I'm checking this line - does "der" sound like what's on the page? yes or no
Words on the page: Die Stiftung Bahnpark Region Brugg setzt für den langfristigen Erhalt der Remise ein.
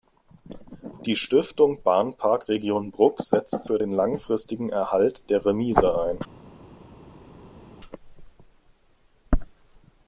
yes